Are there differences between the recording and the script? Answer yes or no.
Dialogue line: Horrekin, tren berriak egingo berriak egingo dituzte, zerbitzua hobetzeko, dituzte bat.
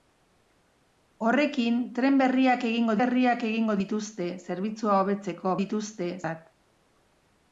no